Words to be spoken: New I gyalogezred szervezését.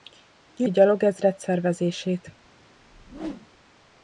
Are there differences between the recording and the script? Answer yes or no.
no